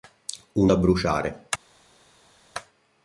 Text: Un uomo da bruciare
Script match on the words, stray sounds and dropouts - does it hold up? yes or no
no